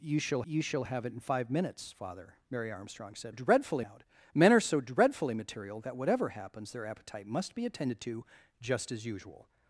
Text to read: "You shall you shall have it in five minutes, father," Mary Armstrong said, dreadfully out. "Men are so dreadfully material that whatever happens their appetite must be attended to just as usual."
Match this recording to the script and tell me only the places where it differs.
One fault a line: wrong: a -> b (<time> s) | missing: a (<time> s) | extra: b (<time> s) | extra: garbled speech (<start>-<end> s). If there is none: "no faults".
no faults